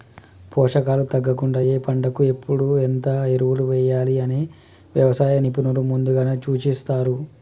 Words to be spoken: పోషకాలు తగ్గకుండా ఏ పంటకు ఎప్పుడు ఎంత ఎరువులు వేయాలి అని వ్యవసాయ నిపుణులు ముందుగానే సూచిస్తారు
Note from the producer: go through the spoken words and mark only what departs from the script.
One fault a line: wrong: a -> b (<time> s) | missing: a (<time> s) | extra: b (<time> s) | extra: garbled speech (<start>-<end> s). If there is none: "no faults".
no faults